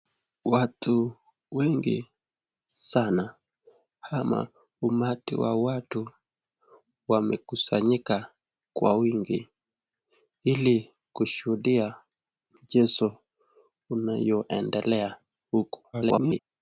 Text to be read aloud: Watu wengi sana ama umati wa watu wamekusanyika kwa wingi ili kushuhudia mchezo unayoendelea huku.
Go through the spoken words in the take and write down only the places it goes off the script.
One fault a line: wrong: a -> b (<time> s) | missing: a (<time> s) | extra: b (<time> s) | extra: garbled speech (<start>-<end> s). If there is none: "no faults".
extra: garbled speech (15.9-16.4 s)